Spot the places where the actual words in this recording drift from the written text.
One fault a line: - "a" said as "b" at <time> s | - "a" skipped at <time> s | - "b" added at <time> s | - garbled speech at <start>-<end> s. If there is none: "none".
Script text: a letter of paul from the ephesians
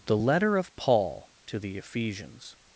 - "a" said as "the" at 0.1 s
- "from" said as "to" at 1.5 s